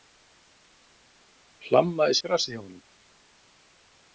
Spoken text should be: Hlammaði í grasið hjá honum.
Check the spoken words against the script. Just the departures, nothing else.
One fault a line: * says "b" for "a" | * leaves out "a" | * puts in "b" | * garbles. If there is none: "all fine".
all fine